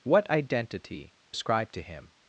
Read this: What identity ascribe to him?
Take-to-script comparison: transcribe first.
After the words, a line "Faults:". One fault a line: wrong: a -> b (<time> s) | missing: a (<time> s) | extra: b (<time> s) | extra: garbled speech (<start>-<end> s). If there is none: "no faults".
What identity ascribe to him?
Faults:
no faults